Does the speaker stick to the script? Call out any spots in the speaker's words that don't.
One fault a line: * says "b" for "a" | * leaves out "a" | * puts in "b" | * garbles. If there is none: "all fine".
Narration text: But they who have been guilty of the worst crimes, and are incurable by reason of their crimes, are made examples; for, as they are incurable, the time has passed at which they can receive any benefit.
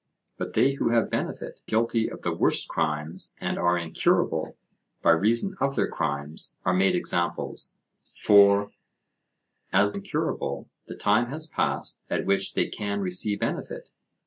* says "benefit" for "been"
* leaves out "they are"
* leaves out "any"